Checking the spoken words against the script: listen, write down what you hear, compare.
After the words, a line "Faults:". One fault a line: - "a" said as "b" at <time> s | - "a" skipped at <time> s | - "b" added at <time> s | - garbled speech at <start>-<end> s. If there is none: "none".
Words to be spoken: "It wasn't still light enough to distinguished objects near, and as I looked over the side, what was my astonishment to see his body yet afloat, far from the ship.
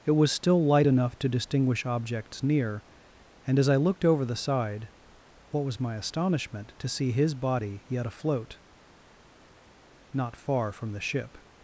"It was still light enough to distinguish objects near, and as I looked over the side, what was my astonishment to see his body yet afloat, not far from the ship.
Faults:
- "wasn't" said as "was" at 0.1 s
- "distinguished" said as "distinguish" at 1.3 s
- "not" added at 10.1 s